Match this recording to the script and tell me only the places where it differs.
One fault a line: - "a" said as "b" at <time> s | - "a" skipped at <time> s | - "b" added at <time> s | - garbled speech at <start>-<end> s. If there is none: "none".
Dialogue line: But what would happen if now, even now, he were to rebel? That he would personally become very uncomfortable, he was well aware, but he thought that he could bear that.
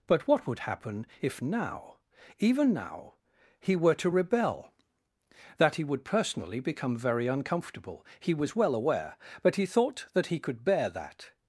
none